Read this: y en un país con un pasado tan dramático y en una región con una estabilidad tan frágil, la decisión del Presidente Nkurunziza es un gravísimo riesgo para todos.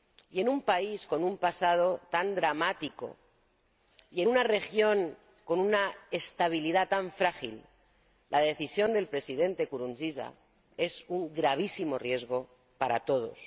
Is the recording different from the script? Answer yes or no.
no